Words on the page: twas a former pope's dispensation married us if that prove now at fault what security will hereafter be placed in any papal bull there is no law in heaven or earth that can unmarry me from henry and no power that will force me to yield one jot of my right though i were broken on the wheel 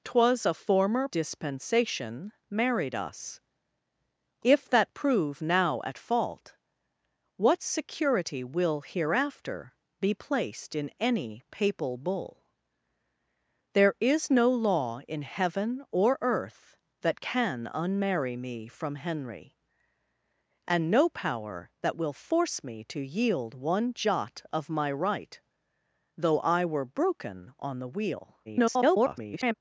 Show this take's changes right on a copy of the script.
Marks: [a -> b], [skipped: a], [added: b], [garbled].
twas a former [skipped: pope's] dispensation married us if that prove now at fault what security will hereafter be placed in any papal bull there is no law in heaven or earth that can unmarry me from henry and no power that will force me to yield one jot of my right though i were broken on the wheel [garbled]